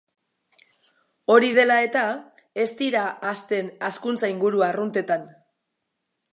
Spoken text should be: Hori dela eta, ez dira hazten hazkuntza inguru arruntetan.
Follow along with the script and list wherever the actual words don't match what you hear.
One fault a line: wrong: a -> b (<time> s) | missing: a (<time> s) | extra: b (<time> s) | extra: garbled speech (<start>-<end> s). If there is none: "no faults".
no faults